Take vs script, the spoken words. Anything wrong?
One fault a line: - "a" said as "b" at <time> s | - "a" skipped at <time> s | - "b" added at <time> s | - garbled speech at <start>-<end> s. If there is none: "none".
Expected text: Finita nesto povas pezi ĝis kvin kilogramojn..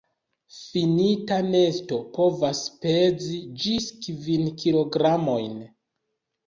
none